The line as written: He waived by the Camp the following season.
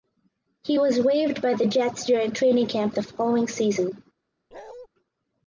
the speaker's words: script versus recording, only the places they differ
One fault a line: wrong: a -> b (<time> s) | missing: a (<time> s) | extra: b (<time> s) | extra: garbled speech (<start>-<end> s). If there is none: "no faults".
extra: was (0.8 s)
extra: Jets during training (1.7 s)